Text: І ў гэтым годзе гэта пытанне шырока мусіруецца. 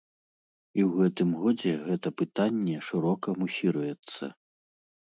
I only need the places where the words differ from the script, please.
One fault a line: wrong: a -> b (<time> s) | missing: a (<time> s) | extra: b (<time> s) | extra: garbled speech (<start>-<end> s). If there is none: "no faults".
no faults